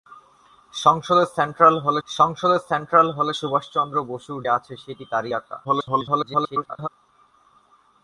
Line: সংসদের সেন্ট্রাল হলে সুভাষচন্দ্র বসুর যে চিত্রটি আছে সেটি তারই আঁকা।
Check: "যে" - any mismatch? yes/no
yes